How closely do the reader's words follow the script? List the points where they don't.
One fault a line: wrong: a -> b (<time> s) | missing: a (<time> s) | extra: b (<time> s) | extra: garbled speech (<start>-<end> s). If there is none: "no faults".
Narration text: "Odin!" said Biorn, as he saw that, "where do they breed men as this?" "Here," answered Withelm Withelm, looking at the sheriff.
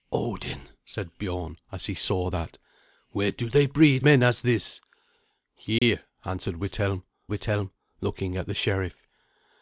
no faults